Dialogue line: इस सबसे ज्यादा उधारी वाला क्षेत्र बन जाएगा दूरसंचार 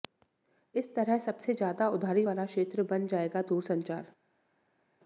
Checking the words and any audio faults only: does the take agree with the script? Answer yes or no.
no